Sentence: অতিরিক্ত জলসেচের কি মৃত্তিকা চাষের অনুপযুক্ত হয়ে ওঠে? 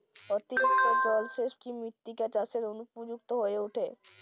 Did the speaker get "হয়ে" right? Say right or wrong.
right